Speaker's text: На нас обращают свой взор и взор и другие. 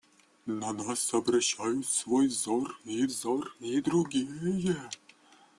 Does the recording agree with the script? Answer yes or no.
yes